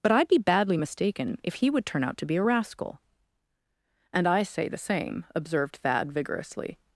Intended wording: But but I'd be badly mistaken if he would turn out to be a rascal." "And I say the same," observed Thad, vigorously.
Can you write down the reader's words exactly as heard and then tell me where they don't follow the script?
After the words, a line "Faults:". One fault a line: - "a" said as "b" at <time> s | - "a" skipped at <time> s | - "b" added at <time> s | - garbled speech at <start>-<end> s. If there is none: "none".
But I'd be badly mistaken if he would turn out to be a rascal." "And I say the same," observed Thad, vigorously.
Faults:
- "but" skipped at 0.1 s